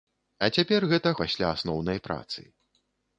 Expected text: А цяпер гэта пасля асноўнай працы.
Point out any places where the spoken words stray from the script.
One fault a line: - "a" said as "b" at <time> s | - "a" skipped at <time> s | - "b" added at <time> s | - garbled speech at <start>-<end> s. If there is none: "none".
none